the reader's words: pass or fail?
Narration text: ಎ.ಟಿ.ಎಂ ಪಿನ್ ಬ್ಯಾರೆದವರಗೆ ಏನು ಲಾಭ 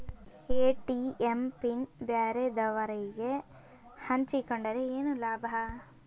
fail